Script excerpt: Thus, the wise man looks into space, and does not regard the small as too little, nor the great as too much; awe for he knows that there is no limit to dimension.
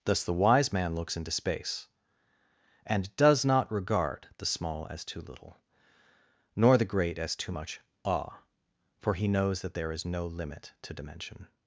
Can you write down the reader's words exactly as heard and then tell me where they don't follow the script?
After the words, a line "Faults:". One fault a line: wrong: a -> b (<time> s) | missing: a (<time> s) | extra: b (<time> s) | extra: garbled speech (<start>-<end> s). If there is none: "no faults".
Thus, the wise man looks into space, and does not regard the small as too little, nor the great as too much; awe for he knows that there is no limit to dimension.
Faults:
no faults